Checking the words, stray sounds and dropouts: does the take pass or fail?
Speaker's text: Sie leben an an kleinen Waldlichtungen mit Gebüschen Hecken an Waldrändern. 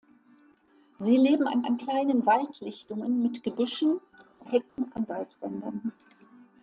fail